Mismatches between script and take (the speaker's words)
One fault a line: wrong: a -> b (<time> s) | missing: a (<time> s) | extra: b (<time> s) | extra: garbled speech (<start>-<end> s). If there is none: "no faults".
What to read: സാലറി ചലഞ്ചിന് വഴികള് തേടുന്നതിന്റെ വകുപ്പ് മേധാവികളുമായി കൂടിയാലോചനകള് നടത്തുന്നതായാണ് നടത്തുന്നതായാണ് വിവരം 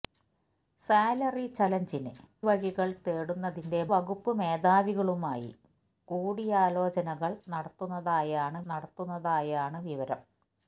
no faults